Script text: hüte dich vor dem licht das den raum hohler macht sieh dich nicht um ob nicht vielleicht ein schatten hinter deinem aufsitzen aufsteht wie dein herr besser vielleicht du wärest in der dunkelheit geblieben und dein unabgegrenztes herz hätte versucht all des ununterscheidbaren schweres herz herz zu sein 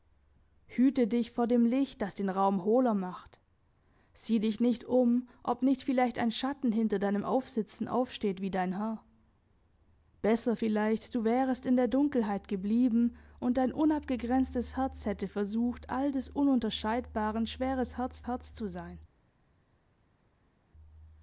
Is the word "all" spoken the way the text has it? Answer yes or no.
yes